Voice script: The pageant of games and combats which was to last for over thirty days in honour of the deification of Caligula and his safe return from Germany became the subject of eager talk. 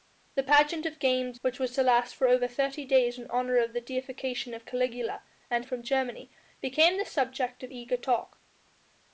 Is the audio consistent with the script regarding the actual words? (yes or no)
no